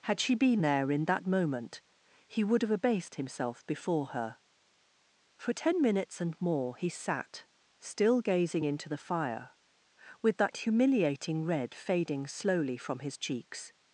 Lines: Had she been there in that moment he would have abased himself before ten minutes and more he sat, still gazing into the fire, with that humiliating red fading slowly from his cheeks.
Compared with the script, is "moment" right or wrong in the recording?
right